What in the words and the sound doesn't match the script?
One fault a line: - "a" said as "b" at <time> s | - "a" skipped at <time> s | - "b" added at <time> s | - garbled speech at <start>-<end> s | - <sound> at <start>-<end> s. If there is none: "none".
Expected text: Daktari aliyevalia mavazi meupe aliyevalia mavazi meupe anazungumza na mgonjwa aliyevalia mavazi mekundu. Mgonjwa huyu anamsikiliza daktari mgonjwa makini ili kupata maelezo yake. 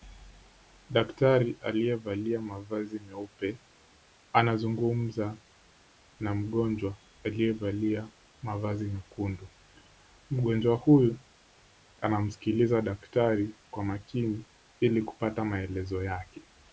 - "aliyevalia mavazi meupe" skipped at 3.6 s
- "mgonjwa" said as "kwa" at 13.7 s